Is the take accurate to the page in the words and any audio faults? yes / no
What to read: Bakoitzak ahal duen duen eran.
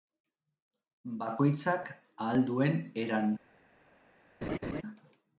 no